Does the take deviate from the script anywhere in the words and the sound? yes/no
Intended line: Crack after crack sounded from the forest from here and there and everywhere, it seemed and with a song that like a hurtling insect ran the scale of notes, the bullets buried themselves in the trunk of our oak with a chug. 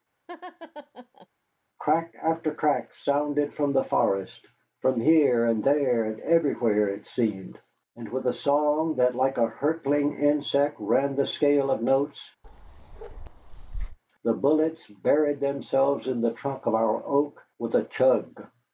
yes